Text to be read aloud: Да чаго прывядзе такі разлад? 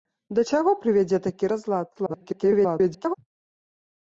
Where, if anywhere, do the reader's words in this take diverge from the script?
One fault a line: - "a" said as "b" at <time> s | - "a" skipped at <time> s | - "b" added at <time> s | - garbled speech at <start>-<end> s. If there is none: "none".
- garbled speech at 1.9-3.1 s